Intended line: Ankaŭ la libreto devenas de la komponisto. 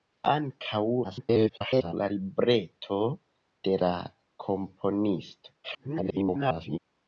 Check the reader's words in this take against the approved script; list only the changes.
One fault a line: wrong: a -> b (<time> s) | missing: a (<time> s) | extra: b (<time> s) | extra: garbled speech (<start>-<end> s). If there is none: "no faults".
extra: garbled speech (1.0-1.9 s)
missing: devenas (3.0 s)
extra: garbled speech (5.6-6.8 s)